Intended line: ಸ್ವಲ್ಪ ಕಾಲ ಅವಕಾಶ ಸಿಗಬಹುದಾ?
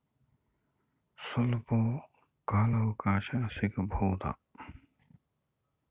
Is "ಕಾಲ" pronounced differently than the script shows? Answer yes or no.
no